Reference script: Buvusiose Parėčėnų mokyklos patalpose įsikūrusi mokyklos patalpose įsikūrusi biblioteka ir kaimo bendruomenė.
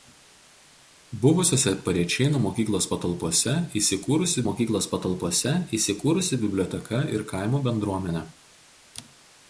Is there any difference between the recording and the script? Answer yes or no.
no